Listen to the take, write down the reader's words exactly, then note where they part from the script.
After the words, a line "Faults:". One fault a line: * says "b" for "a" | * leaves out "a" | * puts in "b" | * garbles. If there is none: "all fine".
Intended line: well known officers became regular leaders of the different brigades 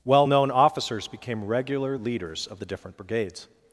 well known officers became regular leaders of the different brigades
Faults:
all fine